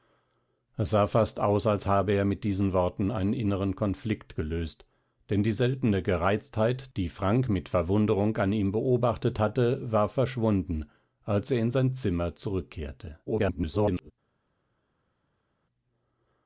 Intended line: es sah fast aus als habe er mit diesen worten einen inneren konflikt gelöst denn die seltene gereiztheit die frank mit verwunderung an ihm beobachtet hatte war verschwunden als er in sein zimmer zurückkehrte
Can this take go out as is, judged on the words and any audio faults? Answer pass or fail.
fail